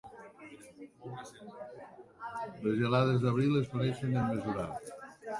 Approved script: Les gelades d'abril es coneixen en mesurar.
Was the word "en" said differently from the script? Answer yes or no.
no